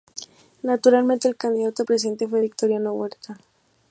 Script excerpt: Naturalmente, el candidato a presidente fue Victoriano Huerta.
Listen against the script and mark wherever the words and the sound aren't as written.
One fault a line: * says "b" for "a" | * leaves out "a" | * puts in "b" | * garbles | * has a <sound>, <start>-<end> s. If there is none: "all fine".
all fine